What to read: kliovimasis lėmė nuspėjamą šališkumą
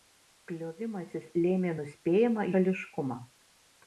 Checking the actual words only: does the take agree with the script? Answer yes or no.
yes